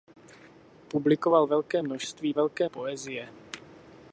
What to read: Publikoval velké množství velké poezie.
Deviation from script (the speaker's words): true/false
false